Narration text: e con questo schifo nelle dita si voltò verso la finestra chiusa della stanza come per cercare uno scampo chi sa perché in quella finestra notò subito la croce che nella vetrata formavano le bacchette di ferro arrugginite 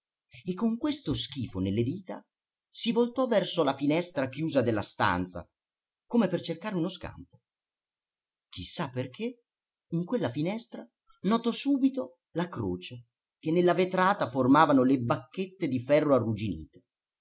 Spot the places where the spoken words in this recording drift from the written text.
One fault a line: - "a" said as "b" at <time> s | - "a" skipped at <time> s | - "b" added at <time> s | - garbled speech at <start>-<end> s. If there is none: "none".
none